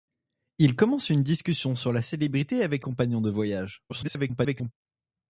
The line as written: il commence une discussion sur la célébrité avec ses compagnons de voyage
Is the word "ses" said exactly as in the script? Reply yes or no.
no